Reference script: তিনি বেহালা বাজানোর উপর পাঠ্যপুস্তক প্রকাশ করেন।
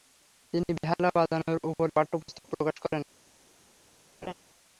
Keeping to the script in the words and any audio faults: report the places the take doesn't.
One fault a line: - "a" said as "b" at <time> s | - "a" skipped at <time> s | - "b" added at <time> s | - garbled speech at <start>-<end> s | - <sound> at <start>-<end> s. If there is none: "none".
- laugh at 4.2-4.3 s